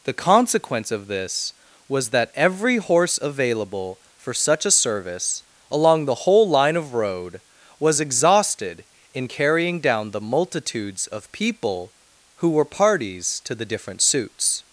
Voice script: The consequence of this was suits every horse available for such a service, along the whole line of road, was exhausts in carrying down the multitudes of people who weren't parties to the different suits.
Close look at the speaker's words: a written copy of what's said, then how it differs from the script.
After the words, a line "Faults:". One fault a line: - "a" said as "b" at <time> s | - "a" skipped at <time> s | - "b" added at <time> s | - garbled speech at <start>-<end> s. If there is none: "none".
The consequence of this was that every horse available for such a service, along the whole line of road, was exhausted in carrying down the multitudes of people who were parties to the different suits.
Faults:
- "suits" said as "that" at 2.1 s
- "exhausts" said as "exhausted" at 8.0 s
- "weren't" said as "were" at 12.5 s